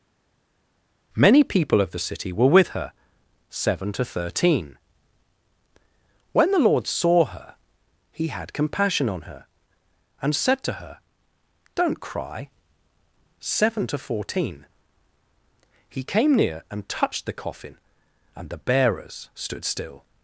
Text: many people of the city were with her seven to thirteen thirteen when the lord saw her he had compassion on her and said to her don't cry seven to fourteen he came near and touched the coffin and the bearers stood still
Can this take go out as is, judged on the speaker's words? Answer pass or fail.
fail